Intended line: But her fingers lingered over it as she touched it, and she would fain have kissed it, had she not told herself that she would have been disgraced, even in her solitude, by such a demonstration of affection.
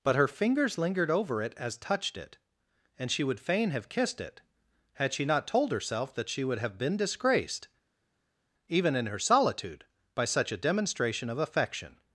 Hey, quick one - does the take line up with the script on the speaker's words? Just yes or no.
no